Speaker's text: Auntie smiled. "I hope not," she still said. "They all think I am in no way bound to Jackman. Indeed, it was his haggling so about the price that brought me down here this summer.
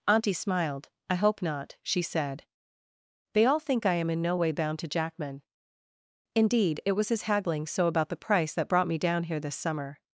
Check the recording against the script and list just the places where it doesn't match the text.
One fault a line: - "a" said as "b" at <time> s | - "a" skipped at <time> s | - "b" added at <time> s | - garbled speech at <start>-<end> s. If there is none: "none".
- "still" skipped at 2.0 s